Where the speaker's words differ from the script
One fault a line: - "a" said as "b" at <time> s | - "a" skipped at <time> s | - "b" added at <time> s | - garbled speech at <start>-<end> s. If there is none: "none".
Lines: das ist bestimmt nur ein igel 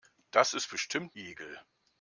- "nur ein" skipped at 1.1 s